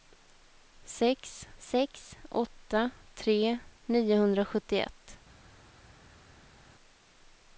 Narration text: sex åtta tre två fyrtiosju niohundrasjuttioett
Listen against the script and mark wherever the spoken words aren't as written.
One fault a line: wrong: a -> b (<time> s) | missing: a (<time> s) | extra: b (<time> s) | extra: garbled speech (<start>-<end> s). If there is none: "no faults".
extra: sex (1.6 s)
missing: två fyrtiosju (3.6 s)